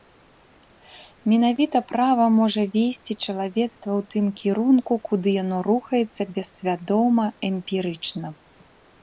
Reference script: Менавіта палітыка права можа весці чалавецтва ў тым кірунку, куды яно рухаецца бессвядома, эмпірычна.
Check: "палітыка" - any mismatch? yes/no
yes